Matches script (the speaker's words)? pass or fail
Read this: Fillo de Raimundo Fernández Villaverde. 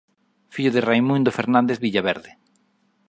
pass